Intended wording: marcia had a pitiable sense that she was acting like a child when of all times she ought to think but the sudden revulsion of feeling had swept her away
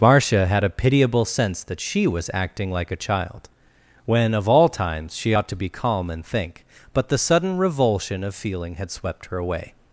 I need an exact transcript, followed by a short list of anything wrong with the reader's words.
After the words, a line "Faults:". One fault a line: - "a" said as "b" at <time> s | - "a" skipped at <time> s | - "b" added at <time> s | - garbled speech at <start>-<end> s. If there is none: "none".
marcia had a pitiable sense that she was acting like a child when of all times she ought to be calm and think but the sudden revulsion of feeling had swept her away
Faults:
- "be calm and" added at 5.6 s